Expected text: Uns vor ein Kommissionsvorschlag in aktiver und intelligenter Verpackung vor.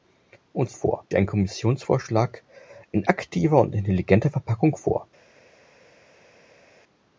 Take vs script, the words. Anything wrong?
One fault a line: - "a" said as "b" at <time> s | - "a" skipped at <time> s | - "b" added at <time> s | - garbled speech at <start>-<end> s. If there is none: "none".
none